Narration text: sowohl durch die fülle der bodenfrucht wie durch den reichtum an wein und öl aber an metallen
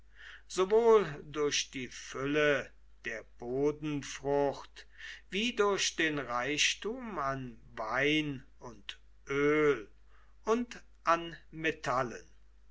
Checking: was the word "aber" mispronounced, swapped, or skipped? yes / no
yes